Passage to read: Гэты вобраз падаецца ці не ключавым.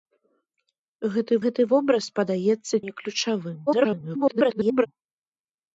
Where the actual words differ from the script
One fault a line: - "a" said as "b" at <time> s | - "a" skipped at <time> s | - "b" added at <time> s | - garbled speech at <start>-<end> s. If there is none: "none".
- "гэты" added at 1.5 s
- "ці" skipped at 2.8 s
- garbled speech at 3.7-4.9 s